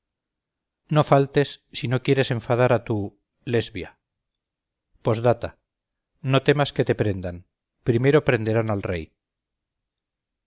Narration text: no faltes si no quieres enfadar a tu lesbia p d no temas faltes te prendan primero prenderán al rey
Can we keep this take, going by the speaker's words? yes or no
no